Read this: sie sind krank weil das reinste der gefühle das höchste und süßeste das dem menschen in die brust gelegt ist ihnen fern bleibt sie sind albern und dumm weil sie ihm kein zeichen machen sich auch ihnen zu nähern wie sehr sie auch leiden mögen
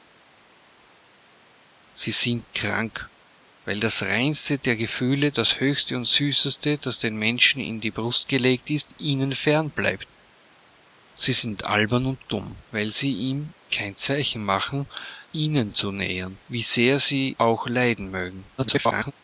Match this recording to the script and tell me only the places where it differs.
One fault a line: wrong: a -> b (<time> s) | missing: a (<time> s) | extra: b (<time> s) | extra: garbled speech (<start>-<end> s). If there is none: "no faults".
missing: sich auch (14.9 s)
extra: garbled speech (18.6-19.1 s)